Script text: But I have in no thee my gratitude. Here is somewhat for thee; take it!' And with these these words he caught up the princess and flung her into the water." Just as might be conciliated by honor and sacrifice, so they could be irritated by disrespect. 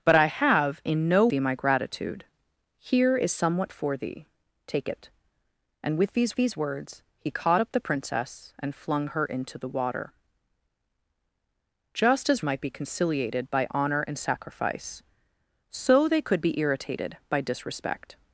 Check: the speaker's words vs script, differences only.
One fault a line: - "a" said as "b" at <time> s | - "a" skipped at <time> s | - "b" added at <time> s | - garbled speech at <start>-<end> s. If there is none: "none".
none